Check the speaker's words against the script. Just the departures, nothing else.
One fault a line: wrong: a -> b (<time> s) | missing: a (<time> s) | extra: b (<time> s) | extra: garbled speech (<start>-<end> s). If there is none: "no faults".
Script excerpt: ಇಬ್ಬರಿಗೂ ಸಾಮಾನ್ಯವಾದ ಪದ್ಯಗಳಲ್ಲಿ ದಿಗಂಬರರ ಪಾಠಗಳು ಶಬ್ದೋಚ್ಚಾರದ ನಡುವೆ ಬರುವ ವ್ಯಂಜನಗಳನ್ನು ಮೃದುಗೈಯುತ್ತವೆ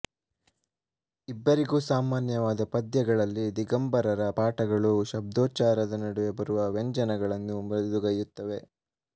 no faults